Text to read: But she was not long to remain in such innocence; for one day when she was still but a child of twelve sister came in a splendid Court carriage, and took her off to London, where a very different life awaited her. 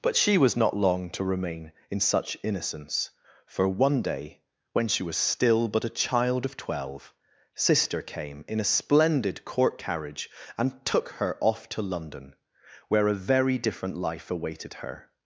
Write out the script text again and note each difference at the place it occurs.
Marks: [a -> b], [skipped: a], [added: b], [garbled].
But she was not long to remain in such innocence; for one day when she was still but a child of twelve sister came in a splendid Court carriage, and took her off to London, where a very different life awaited her.